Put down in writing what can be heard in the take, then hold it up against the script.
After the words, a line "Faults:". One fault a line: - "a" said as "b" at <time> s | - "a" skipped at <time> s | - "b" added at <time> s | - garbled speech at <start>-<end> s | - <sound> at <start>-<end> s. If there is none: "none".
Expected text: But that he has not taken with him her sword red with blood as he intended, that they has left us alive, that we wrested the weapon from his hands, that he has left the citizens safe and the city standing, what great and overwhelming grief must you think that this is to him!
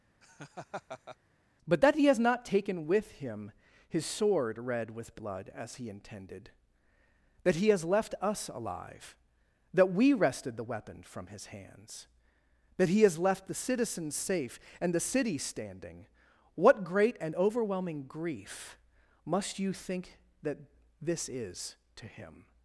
But that he has not taken with him his sword red with blood as he intended, that he has left us alive, that we wrested the weapon from his hands, that he has left the citizens safe and the city standing, what great and overwhelming grief must you think that this is to him!
Faults:
- laugh at 0.2-1.2 s
- "her" said as "his" at 3.9 s
- "they" said as "he" at 7.6 s